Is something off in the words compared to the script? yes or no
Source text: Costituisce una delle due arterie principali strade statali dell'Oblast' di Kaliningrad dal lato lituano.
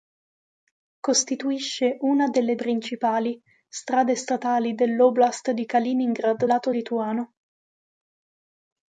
yes